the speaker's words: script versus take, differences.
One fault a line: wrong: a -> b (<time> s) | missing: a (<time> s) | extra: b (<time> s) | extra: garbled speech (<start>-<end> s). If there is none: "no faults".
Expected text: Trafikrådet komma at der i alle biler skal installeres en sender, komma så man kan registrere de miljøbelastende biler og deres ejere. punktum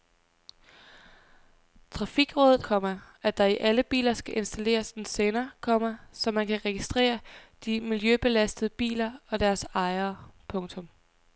no faults